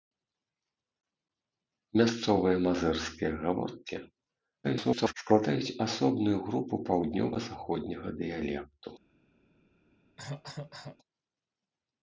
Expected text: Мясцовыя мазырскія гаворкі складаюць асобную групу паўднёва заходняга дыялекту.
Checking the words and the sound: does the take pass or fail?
fail